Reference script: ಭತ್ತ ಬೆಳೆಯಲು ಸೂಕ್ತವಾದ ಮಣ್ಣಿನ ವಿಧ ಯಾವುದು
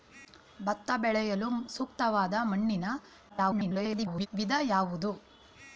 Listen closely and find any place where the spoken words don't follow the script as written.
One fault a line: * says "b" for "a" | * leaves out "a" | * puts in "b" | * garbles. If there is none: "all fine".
* garbles